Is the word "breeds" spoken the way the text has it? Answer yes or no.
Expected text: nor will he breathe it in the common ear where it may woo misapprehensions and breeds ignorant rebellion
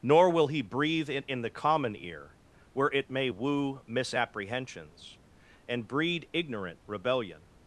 no